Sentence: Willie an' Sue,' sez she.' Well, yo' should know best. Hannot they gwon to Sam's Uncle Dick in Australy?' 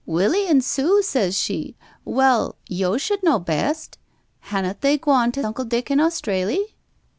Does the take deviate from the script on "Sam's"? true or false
true